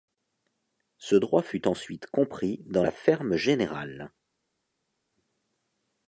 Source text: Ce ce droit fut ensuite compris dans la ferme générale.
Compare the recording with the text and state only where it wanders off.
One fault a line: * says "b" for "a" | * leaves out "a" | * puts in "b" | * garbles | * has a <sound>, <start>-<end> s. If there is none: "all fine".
* leaves out "ce"